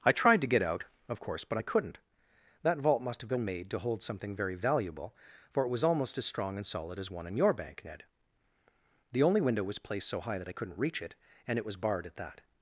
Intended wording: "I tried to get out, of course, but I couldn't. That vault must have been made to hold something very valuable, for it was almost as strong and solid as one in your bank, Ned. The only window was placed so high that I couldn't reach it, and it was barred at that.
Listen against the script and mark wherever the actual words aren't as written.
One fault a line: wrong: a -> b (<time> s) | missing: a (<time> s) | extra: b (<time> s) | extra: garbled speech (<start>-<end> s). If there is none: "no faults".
no faults